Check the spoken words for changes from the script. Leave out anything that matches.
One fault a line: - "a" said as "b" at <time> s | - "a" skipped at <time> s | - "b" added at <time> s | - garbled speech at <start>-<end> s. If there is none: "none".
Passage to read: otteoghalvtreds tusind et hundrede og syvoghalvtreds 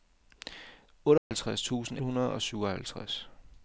- "et" skipped at 2.0 s